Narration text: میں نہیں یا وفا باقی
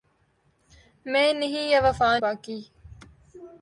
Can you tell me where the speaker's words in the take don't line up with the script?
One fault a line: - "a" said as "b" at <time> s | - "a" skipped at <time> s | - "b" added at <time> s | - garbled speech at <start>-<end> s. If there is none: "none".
none